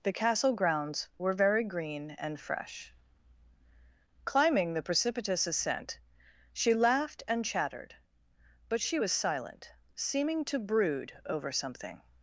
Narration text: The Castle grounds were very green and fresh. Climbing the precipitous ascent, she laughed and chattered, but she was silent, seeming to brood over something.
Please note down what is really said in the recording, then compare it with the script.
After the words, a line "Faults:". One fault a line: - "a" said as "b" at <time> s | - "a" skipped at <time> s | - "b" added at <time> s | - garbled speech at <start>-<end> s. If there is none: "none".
The Castle grounds were very green and fresh. Climbing the precipitous ascent, she laughed and chattered, but she was silent, seeming to brood over something.
Faults:
none